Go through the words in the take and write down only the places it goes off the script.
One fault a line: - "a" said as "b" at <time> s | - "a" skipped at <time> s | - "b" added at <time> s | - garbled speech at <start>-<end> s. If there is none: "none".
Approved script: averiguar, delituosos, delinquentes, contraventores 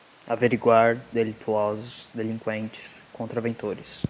none